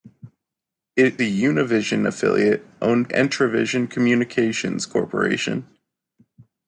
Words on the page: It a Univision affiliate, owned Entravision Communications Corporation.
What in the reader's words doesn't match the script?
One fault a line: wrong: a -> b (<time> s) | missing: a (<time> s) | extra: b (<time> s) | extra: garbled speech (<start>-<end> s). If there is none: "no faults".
no faults